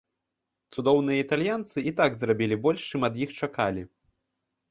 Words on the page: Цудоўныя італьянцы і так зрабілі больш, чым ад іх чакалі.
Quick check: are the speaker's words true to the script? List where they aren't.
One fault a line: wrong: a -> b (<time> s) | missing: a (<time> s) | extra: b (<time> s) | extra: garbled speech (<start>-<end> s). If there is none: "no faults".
no faults